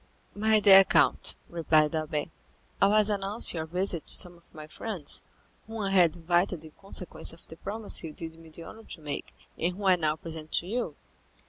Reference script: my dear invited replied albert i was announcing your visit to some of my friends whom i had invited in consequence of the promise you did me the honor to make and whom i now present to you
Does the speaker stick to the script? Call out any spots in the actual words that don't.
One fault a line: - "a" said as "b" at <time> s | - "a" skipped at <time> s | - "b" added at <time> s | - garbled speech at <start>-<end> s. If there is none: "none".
- "invited" said as "count" at 0.8 s